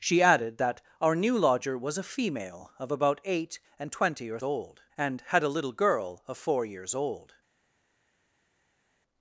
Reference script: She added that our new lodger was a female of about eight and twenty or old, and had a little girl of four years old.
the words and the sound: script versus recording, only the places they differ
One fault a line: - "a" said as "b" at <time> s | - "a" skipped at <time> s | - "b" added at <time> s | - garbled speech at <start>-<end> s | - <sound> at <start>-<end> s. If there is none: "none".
none